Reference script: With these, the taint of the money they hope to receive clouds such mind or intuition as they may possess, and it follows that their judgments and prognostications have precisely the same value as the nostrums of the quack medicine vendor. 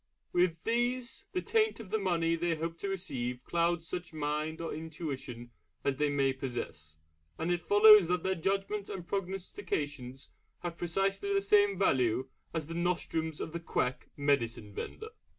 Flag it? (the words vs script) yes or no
no